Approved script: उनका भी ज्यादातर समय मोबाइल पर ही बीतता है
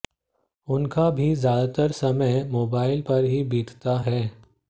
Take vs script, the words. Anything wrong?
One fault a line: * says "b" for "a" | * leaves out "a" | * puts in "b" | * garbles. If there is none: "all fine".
all fine